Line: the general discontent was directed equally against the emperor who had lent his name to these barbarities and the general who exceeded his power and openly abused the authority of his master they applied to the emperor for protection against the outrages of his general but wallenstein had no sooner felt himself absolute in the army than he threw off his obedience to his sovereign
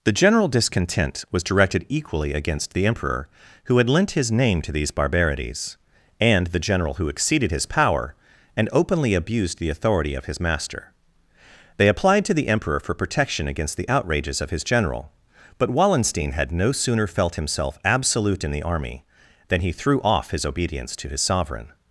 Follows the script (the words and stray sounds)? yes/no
yes